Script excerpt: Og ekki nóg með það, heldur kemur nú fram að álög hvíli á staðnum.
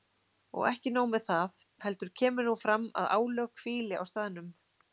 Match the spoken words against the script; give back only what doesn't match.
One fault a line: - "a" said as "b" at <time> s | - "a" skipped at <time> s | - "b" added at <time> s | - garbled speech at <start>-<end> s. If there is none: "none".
none